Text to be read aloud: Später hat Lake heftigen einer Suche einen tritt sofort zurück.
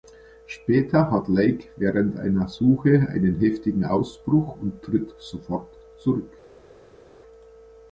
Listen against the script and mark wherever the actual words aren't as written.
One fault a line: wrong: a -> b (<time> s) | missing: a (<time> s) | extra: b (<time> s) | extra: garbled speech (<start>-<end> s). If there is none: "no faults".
wrong: heftigen -> während (1.8 s)
extra: heftigen Ausbruch und (3.4 s)